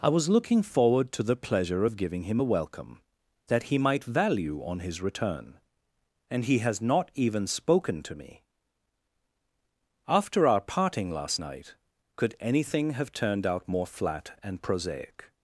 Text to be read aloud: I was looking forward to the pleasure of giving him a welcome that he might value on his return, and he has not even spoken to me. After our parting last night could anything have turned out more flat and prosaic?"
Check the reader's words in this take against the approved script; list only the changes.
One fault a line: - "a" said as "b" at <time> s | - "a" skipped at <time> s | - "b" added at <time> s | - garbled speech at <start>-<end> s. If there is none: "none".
none